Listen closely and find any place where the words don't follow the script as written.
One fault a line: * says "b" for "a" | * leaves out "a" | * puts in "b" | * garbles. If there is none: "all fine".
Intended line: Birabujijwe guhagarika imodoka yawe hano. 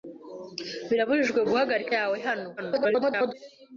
* leaves out "imodoka"
* garbles